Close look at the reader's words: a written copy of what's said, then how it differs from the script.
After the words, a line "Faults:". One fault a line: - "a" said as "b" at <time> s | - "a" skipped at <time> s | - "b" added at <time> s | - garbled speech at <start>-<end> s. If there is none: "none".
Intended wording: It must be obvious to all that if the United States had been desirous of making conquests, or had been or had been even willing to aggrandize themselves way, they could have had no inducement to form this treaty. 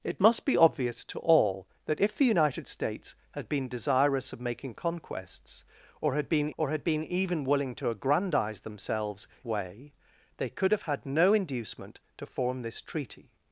It must be obvious to all that if the United States had been desirous of making conquests, or had been or had been even willing to aggrandize themselves way, they could have had no inducement to form this treaty.
Faults:
none